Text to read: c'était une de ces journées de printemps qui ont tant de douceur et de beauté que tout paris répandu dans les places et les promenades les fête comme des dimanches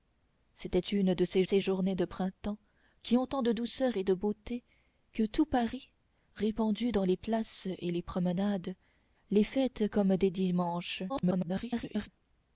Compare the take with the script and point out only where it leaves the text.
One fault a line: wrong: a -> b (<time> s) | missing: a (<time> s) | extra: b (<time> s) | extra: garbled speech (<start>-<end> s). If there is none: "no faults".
extra: ces (1.4 s)
extra: garbled speech (11.1-12.1 s)